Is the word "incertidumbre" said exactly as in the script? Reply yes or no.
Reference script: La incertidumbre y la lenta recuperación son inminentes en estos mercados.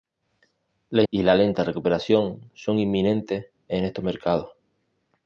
no